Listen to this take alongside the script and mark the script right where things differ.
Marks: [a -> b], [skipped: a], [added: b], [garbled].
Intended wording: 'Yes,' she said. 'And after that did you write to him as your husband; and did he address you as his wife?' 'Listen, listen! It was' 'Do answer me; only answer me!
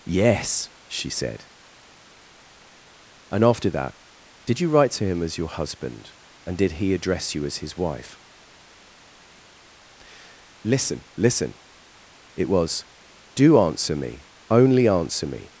'Yes,' she said. 'And after that did you write to him as your husband; and did he address you as his wife?' 'Listen, listen! It was' 'Do answer me; only answer me!